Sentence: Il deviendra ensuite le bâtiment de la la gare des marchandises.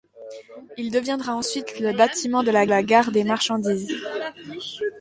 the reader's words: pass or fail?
pass